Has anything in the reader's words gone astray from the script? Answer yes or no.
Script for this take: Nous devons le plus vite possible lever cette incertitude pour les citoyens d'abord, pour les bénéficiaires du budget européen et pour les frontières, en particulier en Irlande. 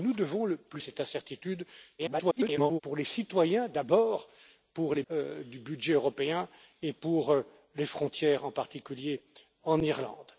yes